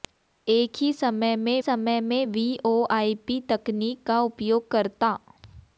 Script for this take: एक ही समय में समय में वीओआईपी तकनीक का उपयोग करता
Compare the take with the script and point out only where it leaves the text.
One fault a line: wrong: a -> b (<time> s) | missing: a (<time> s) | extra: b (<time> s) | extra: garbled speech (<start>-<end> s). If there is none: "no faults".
no faults